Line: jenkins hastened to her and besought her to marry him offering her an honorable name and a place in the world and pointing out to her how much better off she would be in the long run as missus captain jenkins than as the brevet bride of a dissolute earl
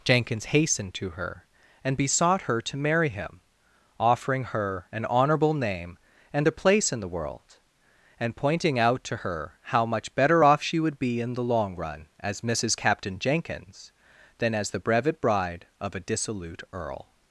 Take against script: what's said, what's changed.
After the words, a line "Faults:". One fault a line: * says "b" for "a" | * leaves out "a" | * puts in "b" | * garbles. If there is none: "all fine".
jenkins hastened to her and besought her to marry him offering her an honorable name and a place in the world and pointing out to her how much better off she would be in the long run as missus captain jenkins than as the brevet bride of a dissolute earl
Faults:
all fine